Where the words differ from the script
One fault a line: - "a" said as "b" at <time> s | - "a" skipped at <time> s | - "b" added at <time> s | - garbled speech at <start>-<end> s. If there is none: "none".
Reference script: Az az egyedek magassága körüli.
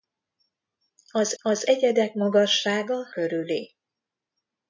none